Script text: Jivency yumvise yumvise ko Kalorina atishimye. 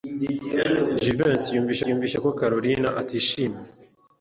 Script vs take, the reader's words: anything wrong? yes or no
no